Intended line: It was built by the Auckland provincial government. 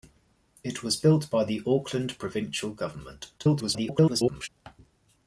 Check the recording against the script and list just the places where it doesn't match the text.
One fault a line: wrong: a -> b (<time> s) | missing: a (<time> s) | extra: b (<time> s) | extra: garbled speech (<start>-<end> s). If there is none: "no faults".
extra: garbled speech (3.4-4.5 s)